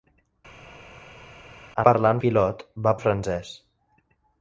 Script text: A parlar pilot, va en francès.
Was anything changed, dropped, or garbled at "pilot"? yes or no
no